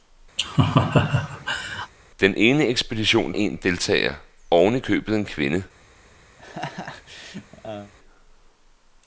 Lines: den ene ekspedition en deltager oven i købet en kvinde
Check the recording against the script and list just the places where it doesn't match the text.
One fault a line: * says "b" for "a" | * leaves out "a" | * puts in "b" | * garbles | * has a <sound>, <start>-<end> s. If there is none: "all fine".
* has a laugh, 0.4-1.9 s
* has a laugh, 6.4-7.9 s